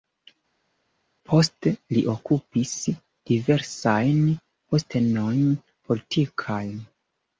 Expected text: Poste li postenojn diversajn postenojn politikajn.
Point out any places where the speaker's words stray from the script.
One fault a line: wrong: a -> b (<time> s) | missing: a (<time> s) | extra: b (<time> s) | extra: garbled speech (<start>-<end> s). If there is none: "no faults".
wrong: postenojn -> okupis (2.1 s)